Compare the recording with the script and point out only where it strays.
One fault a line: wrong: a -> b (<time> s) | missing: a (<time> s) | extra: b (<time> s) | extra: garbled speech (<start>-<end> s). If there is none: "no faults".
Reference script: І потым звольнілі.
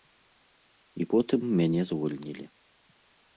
extra: мяне (1.6 s)